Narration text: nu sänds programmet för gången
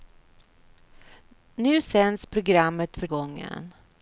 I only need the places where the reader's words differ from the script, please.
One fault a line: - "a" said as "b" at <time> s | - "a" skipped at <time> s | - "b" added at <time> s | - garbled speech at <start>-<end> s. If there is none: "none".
none